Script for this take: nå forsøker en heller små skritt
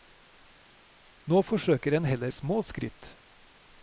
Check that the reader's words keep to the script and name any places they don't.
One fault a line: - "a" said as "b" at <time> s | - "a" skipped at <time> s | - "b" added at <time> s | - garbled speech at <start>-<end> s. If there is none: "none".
none